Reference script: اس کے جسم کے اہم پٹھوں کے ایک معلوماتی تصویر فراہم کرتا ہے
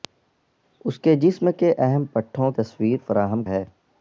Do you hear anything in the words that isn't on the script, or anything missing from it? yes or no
yes